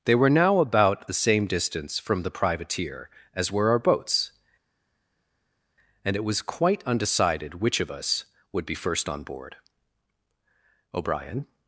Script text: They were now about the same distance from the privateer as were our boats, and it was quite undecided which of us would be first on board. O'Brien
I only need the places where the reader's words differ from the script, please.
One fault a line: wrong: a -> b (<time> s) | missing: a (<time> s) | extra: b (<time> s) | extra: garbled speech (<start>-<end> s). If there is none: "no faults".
no faults